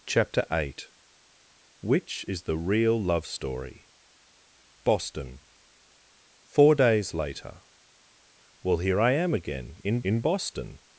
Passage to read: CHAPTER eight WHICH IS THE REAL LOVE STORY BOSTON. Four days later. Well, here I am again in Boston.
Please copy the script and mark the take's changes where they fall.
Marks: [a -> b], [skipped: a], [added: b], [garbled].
CHAPTER eight WHICH IS THE REAL LOVE STORY BOSTON. Four days later. Well, here I am again in [added: in] Boston.